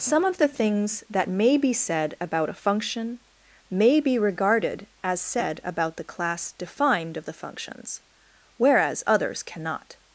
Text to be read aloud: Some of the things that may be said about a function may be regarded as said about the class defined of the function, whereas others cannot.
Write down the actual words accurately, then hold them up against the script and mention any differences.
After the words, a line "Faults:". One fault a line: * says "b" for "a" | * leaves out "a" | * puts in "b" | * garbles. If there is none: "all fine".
Some of the things that may be said about a function may be regarded as said about the class defined of the functions, whereas others cannot.
Faults:
* says "functions" for "function"